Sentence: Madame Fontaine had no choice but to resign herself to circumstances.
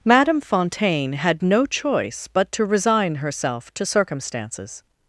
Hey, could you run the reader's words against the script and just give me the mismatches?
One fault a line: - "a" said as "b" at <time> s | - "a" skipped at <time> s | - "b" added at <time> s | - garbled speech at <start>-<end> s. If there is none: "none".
none